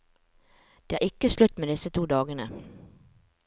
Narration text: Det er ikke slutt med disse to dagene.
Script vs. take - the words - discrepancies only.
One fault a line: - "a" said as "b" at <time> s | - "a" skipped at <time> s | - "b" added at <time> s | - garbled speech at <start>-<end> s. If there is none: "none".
none